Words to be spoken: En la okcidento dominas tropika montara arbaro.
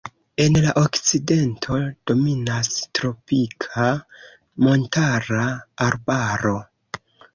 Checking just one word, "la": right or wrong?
right